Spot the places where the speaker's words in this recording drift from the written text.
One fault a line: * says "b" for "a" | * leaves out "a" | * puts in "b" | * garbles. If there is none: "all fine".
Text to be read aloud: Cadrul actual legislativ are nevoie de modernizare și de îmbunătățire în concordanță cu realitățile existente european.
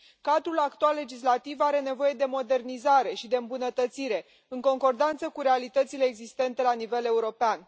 * puts in "la nivel"